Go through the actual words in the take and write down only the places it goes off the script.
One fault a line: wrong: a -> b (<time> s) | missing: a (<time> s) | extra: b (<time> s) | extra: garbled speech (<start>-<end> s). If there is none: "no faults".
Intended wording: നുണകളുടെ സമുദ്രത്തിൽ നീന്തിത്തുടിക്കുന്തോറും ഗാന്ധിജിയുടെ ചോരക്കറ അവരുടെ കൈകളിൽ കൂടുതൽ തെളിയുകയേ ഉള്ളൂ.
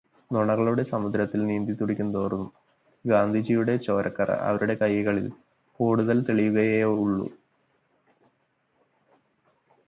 no faults